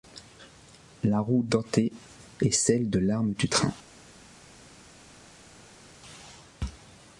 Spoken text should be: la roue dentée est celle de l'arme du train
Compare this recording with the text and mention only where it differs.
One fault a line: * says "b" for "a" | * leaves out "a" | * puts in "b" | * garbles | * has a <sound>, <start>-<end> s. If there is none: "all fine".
all fine